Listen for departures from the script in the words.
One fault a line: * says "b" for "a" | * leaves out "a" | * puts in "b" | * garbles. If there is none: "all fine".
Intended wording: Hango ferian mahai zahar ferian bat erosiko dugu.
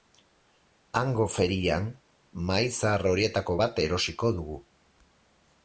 * says "horietako" for "ferian"